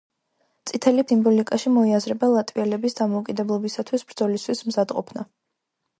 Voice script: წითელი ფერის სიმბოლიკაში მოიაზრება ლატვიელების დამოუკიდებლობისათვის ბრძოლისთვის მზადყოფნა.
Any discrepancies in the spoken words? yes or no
yes